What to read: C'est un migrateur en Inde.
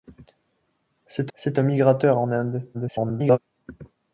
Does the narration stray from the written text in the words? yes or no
yes